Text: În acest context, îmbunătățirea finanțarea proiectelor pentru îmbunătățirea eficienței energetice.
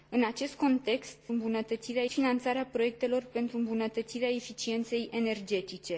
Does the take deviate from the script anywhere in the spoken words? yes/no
no